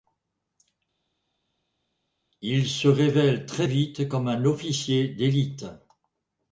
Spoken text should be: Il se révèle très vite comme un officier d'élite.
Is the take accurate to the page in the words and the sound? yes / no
yes